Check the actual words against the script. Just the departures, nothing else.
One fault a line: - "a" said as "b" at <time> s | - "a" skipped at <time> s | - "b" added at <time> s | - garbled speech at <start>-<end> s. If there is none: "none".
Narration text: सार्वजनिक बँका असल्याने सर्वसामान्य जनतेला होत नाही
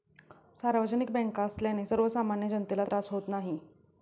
- "त्रास" added at 2.8 s